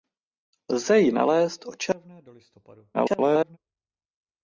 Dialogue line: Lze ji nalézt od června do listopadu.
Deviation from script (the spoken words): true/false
true